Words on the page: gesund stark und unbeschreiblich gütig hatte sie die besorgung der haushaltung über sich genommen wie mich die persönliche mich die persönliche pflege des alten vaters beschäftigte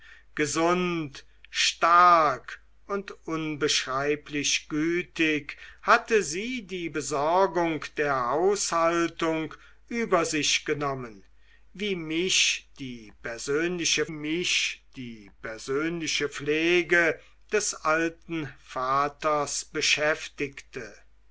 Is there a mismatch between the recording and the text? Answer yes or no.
no